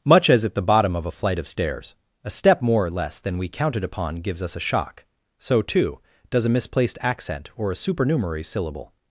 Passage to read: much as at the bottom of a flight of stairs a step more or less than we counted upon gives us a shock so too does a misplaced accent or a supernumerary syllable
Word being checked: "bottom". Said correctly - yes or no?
yes